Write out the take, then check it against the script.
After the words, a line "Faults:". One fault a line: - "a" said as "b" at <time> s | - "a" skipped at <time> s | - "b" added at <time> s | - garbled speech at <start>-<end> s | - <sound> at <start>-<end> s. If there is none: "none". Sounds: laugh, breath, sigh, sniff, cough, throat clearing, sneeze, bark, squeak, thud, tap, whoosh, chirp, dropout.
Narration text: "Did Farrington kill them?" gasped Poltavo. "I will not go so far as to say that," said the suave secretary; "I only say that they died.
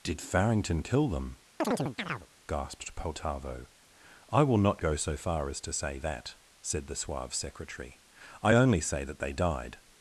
"Did Farrington kill them?" gasped Poltavo. "I will not go so far as to say that," said the suave secretary; "I only say that they died.
Faults:
- chirp at 1.6-2.3 s